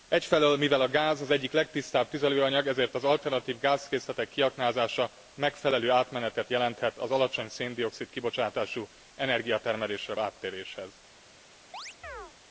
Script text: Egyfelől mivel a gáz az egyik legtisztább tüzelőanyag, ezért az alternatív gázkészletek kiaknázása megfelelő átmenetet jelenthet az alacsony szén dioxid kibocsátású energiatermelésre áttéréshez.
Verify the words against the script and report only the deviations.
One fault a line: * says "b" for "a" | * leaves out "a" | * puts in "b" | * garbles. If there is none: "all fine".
all fine